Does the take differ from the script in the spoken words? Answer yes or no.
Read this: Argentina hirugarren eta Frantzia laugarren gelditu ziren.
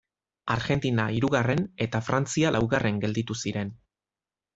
no